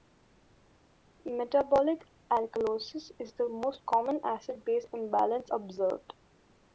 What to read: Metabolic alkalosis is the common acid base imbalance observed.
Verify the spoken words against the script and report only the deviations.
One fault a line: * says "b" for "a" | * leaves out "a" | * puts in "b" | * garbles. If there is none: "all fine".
* puts in "most"